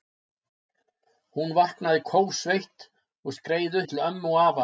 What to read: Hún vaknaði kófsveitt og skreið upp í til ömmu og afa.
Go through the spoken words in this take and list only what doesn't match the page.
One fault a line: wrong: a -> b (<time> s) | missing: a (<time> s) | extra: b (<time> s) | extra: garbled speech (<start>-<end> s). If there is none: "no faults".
missing: upp (3.8 s)